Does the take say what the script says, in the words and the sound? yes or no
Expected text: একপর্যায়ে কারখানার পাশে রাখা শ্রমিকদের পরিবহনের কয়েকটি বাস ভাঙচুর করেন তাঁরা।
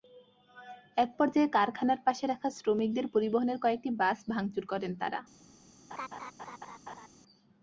no